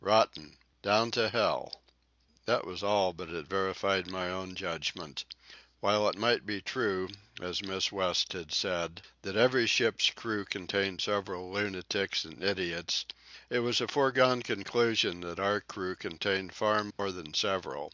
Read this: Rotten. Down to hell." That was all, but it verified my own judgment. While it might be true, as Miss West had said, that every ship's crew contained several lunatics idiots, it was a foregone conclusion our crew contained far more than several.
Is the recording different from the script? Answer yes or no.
yes